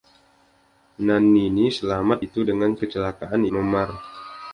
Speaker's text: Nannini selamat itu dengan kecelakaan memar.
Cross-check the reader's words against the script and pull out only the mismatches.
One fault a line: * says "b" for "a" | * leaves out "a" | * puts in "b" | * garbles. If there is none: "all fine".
all fine